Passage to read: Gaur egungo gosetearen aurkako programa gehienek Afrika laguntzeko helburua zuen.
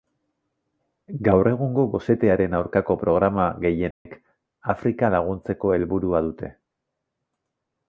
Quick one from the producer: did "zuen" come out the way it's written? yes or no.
no